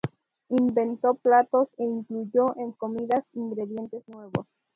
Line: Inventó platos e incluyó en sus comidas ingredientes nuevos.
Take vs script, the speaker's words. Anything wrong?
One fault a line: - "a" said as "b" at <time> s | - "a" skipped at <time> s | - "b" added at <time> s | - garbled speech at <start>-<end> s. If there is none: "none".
- "sus" skipped at 2.8 s